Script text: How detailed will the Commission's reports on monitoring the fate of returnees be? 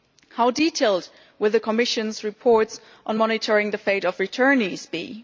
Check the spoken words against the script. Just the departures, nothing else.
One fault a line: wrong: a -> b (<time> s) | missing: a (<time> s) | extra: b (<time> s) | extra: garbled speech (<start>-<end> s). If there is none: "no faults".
no faults